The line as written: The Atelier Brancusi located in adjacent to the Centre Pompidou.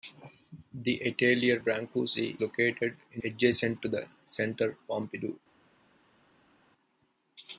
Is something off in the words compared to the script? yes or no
no